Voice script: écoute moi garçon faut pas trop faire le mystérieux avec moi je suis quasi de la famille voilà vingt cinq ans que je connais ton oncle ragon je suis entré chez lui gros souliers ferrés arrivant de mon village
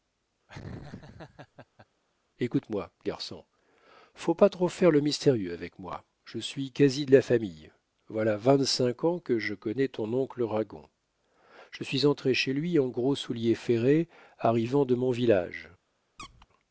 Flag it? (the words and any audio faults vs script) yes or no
yes